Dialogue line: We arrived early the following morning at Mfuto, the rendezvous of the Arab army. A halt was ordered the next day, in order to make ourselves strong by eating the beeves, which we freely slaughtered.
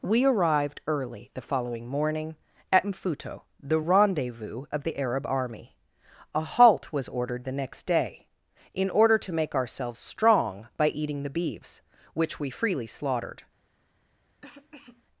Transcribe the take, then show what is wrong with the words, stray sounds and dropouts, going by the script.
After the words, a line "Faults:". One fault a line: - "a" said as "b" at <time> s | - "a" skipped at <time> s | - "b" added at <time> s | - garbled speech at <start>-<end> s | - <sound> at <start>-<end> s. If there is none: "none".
We arrived early the following morning at Mfuto, the rendezvous of the Arab army. A halt was ordered the next day, in order to make ourselves strong by eating the beeves, which we freely slaughtered.
Faults:
- cough at 14.4-15.0 s